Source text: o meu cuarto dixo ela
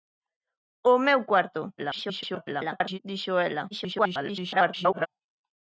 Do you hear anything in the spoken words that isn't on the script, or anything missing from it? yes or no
yes